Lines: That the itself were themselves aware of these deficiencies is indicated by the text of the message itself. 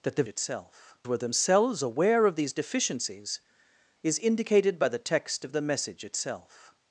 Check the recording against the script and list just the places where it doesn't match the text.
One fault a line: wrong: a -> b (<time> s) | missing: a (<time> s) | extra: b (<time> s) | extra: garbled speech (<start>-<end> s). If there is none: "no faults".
no faults